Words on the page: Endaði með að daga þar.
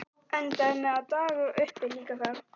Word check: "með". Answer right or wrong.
right